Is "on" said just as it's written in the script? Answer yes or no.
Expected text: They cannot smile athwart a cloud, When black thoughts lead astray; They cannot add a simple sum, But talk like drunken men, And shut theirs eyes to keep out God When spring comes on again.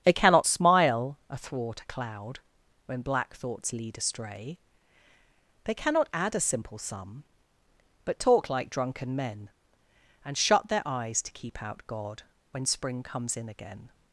no